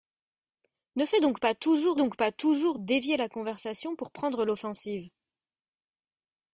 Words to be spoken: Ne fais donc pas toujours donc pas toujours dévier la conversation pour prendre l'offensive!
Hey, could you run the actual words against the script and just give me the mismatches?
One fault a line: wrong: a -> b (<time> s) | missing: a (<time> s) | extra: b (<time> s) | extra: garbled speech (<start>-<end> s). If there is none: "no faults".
no faults